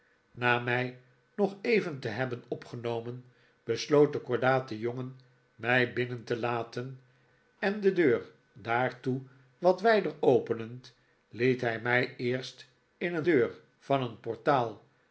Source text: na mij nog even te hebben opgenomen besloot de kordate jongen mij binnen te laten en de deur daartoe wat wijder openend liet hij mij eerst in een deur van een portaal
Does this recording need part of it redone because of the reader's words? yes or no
no